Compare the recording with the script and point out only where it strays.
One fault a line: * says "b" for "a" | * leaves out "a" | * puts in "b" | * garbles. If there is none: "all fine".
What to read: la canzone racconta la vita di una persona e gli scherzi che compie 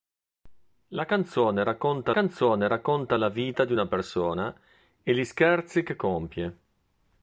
* puts in "canzone racconta"